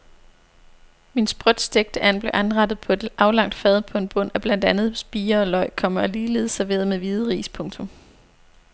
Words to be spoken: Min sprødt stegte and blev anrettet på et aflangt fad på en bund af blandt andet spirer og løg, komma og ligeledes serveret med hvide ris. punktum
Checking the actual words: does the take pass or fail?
pass